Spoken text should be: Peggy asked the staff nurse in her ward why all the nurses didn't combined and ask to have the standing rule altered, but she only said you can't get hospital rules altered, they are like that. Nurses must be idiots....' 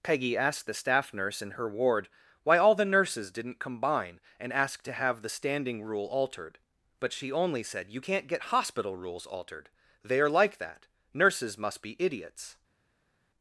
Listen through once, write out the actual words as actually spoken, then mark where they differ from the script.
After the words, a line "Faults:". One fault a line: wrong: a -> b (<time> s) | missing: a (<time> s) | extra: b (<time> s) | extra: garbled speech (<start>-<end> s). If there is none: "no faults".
Peggy asked the staff nurse in her ward why all the nurses didn't combine and ask to have the standing rule altered, but she only said you can't get hospital rules altered, they are like that. Nurses must be idiots....'
Faults:
wrong: combined -> combine (3.6 s)